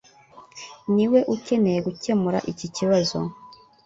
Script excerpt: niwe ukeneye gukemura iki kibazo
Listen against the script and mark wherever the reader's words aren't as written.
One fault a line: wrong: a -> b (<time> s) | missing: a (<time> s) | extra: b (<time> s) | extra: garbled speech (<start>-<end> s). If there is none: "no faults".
no faults